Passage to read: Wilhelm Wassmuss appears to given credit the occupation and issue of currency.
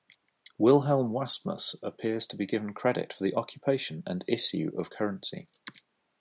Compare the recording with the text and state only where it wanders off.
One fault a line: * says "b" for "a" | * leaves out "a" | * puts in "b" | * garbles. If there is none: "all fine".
* puts in "be"
* puts in "for"